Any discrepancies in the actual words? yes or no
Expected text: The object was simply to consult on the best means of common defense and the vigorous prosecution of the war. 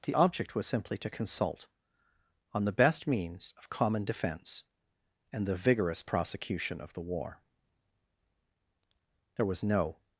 yes